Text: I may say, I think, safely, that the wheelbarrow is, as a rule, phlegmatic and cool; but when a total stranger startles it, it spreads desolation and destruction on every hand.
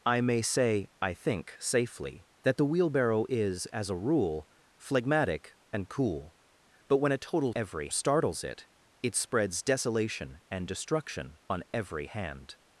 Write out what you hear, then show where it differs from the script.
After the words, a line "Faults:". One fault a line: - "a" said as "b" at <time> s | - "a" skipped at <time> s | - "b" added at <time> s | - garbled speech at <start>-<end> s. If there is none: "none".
I may say, I think, safely, that the wheelbarrow is, as a rule, phlegmatic and cool; but when a total every startles it, it spreads desolation and destruction on every hand.
Faults:
- "stranger" said as "every" at 7.6 s